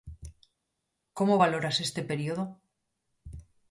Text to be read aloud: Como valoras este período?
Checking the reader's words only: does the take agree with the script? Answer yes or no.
yes